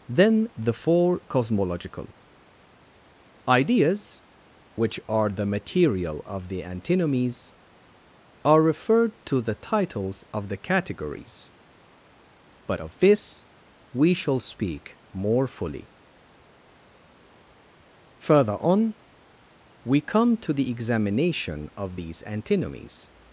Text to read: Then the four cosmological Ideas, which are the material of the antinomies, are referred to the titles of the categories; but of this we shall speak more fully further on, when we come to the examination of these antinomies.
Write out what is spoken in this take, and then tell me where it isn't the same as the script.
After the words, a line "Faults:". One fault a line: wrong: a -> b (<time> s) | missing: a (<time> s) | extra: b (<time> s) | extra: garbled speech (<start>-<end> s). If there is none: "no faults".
Then the four cosmological Ideas, which are the material of the antinomies, are referred to the titles of the categories; but of this we shall speak more fully further on, we come to the examination of these antinomies.
Faults:
missing: when (18.9 s)